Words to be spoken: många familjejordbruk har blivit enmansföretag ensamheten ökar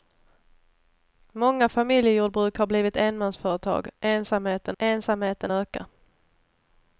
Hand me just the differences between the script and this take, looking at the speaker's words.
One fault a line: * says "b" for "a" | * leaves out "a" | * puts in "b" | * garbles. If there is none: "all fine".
* puts in "ensamheten"